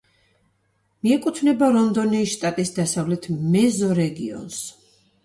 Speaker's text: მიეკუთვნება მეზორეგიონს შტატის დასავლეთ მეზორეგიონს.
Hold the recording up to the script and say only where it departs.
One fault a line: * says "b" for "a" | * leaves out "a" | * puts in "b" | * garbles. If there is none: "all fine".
* says "რონდონიის" for "მეზორეგიონს"